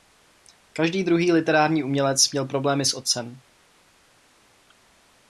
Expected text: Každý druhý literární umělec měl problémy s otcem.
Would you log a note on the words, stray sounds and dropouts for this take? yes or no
no